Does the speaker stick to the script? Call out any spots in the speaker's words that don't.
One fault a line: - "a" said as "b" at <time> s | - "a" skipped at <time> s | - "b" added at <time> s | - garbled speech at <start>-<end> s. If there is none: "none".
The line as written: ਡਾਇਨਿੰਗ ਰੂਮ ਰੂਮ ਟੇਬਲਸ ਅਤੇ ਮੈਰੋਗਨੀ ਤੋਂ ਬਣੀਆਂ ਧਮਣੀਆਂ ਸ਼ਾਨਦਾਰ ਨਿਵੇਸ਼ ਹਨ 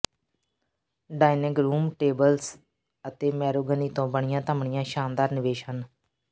- "ਰੂਮ" skipped at 1.9 s